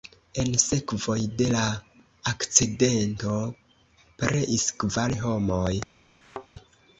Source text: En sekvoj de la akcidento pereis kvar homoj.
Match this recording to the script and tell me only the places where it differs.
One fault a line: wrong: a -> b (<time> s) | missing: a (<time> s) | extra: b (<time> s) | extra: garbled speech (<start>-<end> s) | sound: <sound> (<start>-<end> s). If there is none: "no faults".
sound: thud (6.2-6.5 s)